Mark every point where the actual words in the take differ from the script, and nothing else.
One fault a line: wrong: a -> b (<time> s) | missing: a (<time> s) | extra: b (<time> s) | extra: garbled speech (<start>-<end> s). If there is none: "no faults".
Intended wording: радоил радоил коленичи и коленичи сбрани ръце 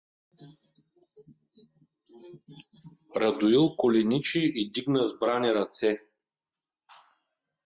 missing: радоил (3.8 s)
wrong: коленичи -> дигна (4.7 s)